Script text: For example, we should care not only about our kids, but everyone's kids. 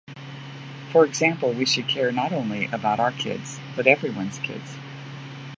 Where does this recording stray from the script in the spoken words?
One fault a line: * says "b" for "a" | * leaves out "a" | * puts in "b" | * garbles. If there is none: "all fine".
all fine